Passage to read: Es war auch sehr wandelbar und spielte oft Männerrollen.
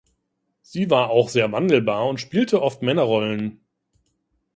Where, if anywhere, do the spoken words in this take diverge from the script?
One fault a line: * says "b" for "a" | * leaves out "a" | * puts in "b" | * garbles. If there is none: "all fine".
* says "Sie" for "Es"